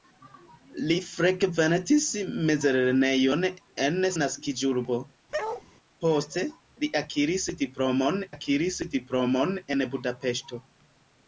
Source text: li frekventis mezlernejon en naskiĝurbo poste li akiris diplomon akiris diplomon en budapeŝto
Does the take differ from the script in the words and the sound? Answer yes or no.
yes